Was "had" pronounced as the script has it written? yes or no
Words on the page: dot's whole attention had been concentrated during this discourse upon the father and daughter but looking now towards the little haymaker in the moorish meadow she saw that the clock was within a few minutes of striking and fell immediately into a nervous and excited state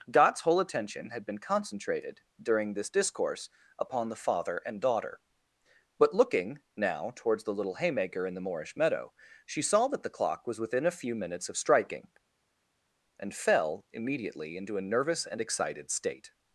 yes